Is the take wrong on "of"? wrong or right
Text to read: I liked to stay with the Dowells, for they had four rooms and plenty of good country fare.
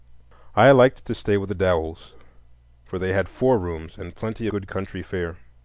wrong